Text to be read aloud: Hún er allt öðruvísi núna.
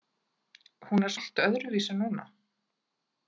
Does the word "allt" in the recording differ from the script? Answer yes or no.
no